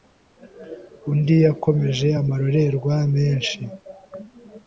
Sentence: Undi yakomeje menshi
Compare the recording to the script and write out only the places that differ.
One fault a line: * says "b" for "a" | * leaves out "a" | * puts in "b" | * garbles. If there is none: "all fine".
* puts in "amarorerwa"